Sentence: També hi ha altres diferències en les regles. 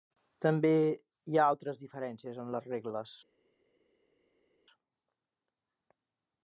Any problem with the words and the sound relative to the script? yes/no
no